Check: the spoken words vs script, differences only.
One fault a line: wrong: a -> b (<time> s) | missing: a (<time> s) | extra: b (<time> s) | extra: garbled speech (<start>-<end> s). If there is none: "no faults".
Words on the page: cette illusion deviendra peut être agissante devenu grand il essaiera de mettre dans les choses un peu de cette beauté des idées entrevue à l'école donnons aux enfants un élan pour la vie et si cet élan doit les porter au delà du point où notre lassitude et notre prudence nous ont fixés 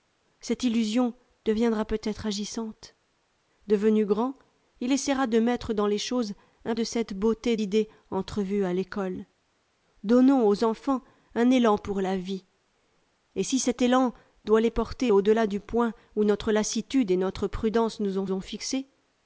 missing: peu (6.7 s)
missing: des (7.6 s)
extra: ont (18.3 s)